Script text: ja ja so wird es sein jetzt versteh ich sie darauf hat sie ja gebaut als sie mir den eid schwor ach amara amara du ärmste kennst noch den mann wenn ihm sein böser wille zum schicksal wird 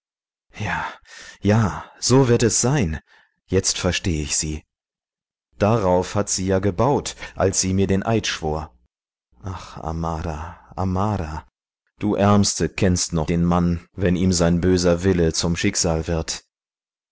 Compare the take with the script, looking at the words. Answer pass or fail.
pass